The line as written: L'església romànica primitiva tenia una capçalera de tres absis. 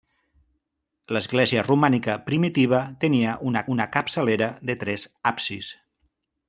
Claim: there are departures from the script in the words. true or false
true